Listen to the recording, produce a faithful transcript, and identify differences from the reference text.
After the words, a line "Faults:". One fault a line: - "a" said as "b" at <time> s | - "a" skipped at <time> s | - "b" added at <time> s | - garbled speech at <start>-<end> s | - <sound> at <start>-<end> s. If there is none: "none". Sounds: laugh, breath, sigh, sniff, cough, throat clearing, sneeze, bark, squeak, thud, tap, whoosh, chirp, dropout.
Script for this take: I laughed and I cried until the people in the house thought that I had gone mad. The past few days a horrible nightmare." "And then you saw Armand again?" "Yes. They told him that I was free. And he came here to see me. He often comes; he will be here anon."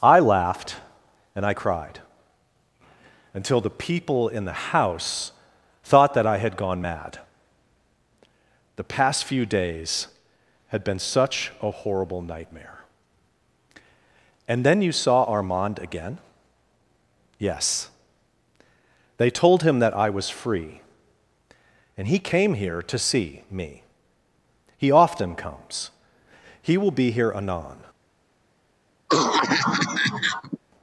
I laughed and I cried until the people in the house thought that I had gone mad. The past few days had been such a horrible nightmare." "And then you saw Armand again?" "Yes. They told him that I was free. And he came here to see me. He often comes; he will be here anon."
Faults:
- "had been such" added at 10.7 s
- cough at 29.1-30.6 s